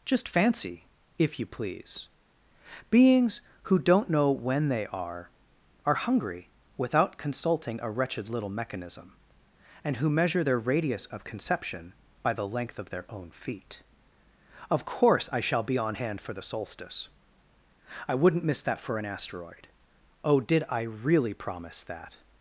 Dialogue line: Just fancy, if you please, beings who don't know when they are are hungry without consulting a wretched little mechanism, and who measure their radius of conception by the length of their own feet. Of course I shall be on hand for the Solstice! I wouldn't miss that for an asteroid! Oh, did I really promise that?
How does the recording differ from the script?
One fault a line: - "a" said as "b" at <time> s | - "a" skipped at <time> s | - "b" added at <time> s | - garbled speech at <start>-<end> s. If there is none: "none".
none